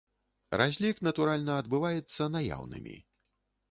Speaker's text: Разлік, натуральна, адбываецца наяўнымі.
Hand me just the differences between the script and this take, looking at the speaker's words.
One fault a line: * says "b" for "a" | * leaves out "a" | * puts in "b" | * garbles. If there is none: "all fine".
all fine